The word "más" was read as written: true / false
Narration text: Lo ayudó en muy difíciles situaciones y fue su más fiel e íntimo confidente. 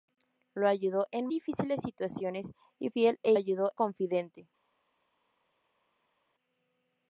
false